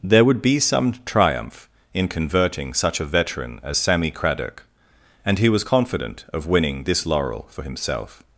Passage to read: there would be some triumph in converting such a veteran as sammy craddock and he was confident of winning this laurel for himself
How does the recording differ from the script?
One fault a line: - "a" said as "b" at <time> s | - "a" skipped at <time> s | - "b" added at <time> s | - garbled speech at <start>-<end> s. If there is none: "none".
none